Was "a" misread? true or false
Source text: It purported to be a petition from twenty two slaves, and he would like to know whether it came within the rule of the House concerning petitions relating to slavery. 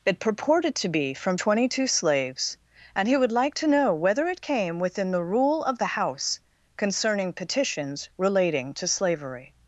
true